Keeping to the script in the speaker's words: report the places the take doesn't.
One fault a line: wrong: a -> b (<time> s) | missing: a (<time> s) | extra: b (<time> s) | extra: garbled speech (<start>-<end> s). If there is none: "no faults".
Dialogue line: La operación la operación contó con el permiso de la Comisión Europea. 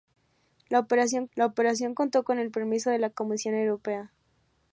no faults